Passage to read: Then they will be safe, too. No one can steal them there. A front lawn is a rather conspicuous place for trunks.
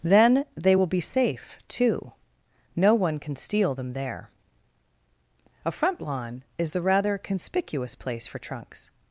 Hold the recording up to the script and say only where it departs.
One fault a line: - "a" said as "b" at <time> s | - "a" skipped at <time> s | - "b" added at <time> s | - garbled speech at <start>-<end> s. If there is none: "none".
- "a" said as "the" at 6.7 s